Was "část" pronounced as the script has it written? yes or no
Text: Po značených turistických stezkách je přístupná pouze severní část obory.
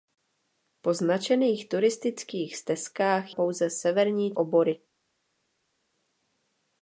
no